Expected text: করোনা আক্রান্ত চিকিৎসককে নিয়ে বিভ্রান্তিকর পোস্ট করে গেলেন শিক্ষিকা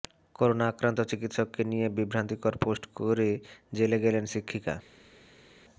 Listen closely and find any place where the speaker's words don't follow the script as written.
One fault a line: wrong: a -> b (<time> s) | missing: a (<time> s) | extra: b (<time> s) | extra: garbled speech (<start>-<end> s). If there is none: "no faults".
extra: জেলে (3.7 s)